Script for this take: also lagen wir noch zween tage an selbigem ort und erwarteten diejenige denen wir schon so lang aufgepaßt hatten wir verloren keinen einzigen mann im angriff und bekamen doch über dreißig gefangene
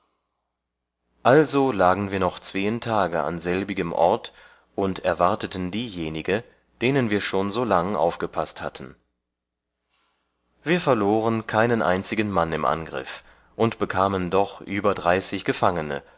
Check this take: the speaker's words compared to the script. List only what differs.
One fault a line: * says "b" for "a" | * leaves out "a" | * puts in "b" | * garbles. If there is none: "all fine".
all fine